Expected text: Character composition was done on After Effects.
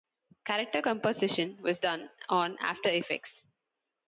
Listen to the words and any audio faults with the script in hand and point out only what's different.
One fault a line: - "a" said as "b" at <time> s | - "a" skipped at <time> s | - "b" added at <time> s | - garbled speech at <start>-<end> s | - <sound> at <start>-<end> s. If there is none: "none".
none